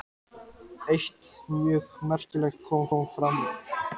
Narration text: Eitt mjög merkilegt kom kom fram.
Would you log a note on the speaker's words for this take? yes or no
no